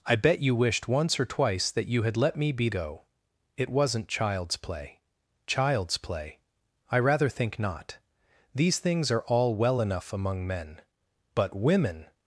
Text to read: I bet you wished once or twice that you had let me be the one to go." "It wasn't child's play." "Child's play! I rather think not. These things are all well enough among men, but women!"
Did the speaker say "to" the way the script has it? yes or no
no